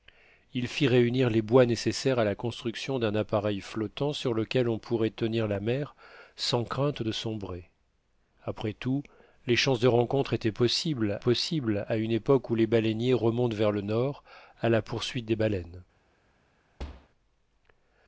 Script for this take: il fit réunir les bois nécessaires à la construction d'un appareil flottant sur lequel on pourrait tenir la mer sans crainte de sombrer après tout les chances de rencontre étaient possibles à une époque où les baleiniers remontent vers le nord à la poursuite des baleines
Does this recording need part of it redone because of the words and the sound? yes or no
yes